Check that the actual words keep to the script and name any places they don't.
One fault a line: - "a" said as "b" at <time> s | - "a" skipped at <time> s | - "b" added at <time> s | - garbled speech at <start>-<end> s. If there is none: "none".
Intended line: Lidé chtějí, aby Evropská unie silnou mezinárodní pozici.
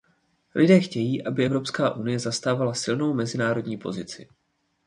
- "zastávala" added at 2.2 s